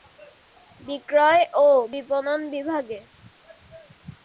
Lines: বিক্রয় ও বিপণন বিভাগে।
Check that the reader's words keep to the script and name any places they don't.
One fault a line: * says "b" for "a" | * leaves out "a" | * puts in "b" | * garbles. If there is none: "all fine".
all fine